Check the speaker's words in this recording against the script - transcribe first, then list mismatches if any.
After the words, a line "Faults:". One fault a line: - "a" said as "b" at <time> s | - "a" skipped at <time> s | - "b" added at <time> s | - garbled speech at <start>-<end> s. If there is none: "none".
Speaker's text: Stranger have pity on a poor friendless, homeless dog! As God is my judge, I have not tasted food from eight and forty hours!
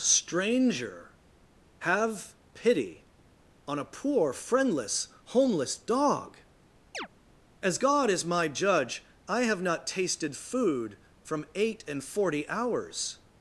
Stranger have pity on a poor friendless, homeless dog! As God is my judge, I have not tasted food from eight and forty hours!
Faults:
none